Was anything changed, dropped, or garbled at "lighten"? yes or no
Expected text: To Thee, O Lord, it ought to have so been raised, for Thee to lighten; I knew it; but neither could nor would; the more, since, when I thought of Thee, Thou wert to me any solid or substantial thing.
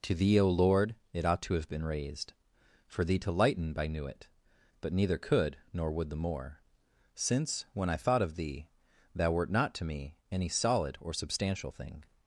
no